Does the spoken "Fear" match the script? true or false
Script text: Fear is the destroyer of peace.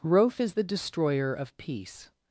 false